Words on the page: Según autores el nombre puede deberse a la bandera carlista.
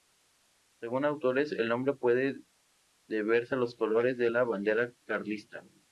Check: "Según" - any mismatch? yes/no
no